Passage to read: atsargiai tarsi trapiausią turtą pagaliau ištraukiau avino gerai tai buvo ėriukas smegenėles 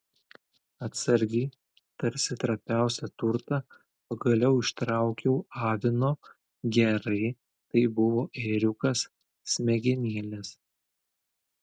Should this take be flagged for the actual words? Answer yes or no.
no